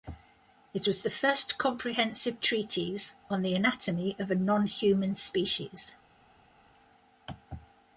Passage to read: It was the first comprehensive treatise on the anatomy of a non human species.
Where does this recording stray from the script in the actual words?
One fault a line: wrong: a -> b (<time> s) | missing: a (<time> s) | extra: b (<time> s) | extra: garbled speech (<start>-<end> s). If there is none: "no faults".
no faults